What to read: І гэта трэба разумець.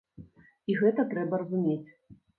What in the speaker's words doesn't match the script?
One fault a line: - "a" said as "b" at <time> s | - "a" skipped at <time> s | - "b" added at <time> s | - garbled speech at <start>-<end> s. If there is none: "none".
none